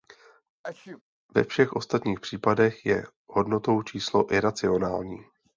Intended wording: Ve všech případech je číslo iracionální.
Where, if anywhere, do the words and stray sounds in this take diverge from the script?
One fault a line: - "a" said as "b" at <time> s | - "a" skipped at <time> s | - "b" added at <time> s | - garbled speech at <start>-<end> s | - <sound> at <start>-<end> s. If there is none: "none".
- sneeze at 0.6-1.0 s
- "ostatních" added at 1.7 s
- "hodnotou" added at 3.3 s